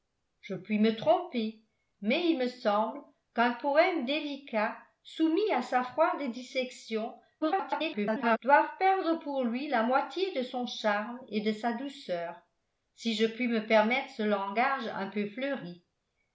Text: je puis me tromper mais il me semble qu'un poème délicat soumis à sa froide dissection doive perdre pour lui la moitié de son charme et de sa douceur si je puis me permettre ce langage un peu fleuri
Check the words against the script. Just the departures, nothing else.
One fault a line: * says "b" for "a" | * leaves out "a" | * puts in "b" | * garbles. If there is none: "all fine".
* garbles